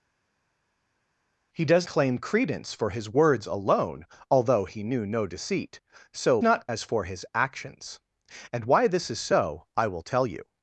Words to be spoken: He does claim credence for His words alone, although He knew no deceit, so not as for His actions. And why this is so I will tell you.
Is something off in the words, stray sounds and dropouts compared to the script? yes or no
no